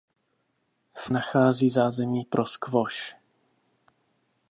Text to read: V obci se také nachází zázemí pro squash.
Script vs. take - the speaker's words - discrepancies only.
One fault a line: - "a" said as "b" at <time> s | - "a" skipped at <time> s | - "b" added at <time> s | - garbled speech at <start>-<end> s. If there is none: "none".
- "obci se také" skipped at 1.1 s